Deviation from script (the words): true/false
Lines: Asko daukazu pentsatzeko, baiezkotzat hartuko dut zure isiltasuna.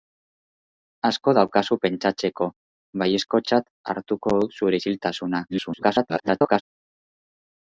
true